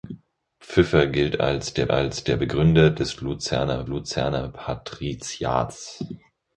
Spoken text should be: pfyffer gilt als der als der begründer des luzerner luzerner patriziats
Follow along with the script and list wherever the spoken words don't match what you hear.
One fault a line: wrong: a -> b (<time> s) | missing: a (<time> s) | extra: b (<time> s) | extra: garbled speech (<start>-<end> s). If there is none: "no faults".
no faults